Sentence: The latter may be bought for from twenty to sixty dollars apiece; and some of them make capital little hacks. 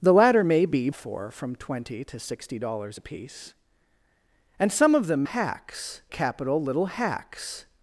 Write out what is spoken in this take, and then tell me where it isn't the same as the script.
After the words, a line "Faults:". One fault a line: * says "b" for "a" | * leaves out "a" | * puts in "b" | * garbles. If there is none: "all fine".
The latter may be for from twenty to sixty dollars apiece; and some of them hacks capital little hacks.
Faults:
* leaves out "bought"
* says "hacks" for "make"